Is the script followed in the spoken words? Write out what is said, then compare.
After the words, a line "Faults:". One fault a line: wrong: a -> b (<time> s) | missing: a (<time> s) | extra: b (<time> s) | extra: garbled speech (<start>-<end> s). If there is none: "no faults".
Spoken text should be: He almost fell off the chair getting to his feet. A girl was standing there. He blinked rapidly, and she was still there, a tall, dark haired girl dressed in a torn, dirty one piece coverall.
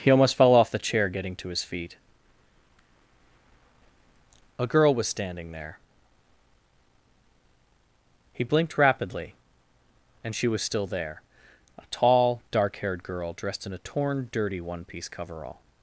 He almost fell off the chair getting to his feet. A girl was standing there. He blinked rapidly, and she was still there, a tall, dark haired girl dressed in a torn, dirty one piece coverall.
Faults:
no faults